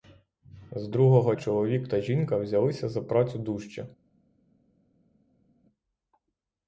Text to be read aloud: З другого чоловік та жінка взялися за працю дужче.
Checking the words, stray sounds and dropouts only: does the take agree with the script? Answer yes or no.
yes